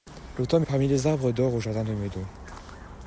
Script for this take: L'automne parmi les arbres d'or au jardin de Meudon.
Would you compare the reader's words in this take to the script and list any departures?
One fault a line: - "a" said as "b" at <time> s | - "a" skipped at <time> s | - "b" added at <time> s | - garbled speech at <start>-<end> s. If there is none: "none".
none